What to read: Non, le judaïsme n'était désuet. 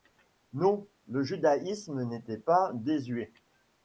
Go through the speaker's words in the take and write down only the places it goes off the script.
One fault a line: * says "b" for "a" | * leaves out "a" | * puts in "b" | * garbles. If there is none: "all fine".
* puts in "pas"